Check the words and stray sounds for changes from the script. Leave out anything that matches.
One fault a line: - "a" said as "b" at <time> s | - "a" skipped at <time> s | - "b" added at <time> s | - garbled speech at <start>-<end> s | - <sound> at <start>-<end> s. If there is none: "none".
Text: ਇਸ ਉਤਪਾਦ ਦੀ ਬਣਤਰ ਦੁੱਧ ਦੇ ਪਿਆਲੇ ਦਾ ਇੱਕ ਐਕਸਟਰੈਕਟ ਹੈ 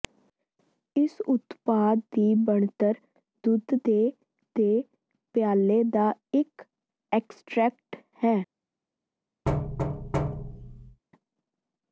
- "ਦੇ" added at 4.6 s
- thud at 9.5-11.0 s